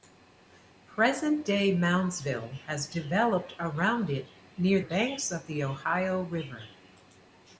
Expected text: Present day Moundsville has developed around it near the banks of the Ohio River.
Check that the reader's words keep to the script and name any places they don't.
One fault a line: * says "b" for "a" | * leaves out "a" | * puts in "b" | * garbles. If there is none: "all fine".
* leaves out "the"